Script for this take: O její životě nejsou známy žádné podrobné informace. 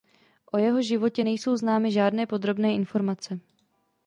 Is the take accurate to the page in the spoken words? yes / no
no